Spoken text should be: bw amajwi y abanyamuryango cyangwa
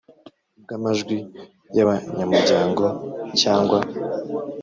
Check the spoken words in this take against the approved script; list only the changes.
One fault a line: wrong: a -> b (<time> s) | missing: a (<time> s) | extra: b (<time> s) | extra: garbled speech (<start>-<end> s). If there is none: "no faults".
no faults